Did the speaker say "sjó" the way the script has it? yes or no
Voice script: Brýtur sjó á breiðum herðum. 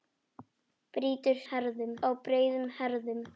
no